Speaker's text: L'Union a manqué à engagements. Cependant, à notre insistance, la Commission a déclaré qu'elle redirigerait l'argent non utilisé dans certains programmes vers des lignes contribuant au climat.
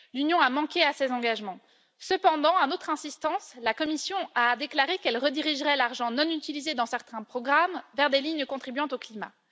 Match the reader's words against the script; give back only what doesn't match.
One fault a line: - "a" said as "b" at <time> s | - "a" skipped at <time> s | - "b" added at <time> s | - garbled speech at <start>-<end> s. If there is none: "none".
- "ses" added at 0.9 s